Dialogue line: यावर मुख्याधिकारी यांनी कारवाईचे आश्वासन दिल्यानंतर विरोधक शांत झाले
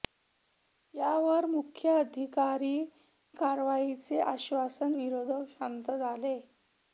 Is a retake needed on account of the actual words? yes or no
yes